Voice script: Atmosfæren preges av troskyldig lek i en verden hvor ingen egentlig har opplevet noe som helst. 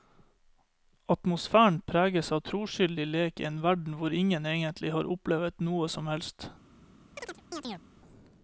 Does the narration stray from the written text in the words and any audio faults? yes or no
yes